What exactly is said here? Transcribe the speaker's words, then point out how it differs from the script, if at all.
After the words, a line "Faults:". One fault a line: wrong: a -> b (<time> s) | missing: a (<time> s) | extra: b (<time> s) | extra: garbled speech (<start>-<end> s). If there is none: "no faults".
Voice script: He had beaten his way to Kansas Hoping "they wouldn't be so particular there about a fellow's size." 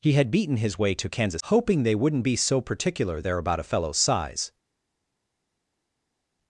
He had beaten his way to Kansas Hoping "they wouldn't be so particular there about a fellow's size."
Faults:
no faults